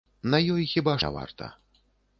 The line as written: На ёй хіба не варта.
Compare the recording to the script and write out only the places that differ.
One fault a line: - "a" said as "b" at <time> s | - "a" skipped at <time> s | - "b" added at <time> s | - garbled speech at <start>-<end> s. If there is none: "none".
none